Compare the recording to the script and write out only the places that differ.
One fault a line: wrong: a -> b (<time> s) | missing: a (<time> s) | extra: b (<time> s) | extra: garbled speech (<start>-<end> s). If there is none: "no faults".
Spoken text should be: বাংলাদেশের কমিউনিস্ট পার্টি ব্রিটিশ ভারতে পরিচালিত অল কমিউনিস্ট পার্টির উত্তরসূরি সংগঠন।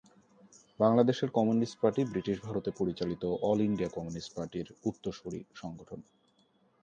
extra: ইন্ডিয়া (3.7 s)